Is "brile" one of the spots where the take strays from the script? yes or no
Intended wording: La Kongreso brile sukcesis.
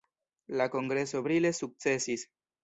no